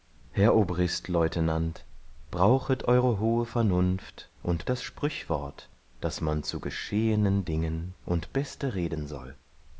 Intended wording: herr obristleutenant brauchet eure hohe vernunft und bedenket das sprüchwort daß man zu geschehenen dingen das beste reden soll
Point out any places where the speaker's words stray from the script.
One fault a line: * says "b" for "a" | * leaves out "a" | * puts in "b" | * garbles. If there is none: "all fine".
* leaves out "bedenket"
* says "und" for "das"